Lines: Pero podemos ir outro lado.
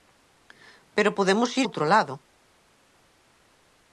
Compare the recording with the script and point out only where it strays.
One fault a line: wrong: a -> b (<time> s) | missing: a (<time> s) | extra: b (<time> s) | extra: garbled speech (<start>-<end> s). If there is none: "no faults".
no faults